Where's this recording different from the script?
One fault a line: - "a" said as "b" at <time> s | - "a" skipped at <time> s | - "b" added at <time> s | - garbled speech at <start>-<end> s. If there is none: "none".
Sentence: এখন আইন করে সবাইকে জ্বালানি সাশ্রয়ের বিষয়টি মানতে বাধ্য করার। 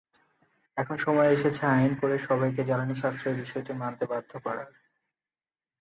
- "সময় এসেছে" added at 1.0 s